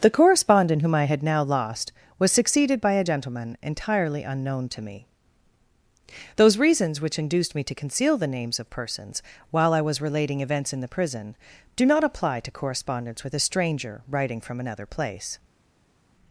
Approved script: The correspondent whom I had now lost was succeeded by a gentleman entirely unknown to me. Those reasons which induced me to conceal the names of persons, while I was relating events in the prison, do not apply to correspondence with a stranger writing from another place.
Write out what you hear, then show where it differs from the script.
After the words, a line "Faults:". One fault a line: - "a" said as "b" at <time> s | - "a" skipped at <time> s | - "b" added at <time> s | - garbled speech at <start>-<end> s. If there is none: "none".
The correspondent whom I had now lost was succeeded by a gentleman entirely unknown to me. Those reasons which induced me to conceal the names of persons, while I was relating events in the prison, do not apply to correspondence with a stranger writing from another place.
Faults:
none